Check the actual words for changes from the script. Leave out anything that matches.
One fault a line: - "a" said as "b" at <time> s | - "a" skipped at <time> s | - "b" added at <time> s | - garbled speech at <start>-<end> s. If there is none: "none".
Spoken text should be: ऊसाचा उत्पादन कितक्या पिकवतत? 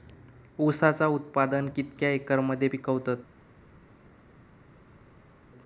- "एकर मध्ये" added at 2.1 s